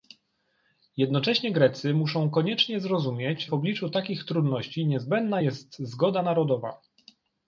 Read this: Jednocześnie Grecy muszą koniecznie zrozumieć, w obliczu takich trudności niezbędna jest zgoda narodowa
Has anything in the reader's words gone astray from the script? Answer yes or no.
no